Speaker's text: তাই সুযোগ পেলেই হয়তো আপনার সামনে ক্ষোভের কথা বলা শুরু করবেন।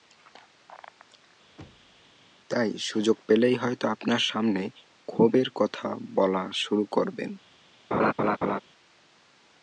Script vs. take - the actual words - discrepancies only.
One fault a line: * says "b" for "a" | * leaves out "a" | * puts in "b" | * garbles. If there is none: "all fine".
all fine